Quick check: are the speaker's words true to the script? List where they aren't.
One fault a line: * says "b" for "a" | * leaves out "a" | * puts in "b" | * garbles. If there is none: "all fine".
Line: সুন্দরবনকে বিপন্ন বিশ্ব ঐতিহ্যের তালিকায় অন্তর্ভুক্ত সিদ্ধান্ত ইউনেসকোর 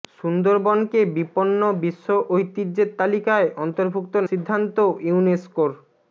all fine